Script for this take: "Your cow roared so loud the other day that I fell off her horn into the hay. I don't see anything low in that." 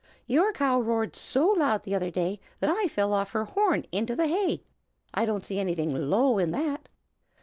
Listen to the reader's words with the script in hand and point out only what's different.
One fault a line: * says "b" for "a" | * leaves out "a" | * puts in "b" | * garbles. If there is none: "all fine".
all fine